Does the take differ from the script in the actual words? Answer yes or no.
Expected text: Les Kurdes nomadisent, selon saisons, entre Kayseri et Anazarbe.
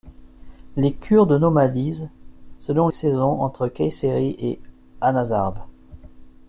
no